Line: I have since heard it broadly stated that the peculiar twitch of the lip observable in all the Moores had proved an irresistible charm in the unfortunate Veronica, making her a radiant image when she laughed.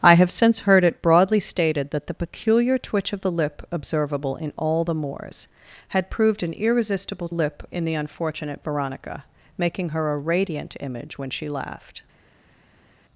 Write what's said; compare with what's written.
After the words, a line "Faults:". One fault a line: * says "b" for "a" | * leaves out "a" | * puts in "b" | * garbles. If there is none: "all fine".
I have since heard it broadly stated that the peculiar twitch of the lip observable in all the Moores had proved an irresistible lip in the unfortunate Veronica, making her a radiant image when she laughed.
Faults:
* says "lip" for "charm"